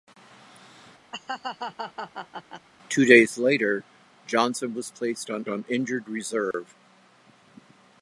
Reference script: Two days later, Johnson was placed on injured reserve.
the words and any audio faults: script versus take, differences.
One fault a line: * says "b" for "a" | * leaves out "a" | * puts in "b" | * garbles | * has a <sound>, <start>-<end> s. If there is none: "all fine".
* has a laugh, 1.1-2.7 s
* puts in "on"
* has a dropout, 6.5-6.5 s